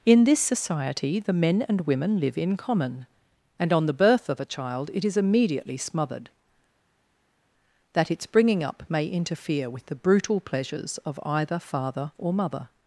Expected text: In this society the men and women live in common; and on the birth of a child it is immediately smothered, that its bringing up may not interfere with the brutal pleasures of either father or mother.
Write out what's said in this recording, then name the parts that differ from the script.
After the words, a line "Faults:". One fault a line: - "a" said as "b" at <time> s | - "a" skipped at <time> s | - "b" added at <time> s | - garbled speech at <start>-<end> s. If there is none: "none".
In this society the men and women live in common; and on the birth of a child it is immediately smothered, that its bringing up may interfere with the brutal pleasures of either father or mother.
Faults:
- "not" skipped at 9.1 s